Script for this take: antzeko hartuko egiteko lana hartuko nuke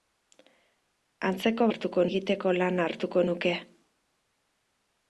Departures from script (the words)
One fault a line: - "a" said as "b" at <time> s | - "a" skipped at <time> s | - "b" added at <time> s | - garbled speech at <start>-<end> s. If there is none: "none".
none